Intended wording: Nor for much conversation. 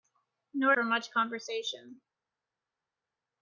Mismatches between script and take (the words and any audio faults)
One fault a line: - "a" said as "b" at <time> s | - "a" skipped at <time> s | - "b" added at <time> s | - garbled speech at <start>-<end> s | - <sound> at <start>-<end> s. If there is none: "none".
none